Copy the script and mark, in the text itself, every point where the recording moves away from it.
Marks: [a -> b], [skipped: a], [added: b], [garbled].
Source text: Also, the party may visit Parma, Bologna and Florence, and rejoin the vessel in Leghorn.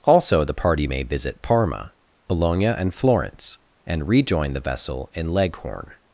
Also, the party may visit Parma, Bologna and Florence, and rejoin the vessel in Leghorn.